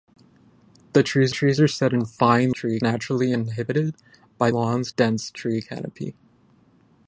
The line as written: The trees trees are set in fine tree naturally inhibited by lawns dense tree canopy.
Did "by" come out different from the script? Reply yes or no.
no